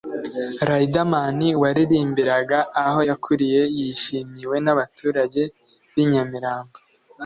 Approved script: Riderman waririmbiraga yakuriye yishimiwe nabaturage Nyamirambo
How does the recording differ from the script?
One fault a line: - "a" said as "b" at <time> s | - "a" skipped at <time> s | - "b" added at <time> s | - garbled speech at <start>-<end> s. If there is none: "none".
- "aho" added at 2.8 s
- "b'i" added at 5.9 s